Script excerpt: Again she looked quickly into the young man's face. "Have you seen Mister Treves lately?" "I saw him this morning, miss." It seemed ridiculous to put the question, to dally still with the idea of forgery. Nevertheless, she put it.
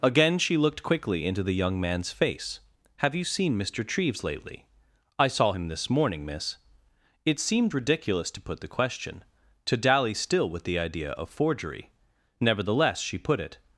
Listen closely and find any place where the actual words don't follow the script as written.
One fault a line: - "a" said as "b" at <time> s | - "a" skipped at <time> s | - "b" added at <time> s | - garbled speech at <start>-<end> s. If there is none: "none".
none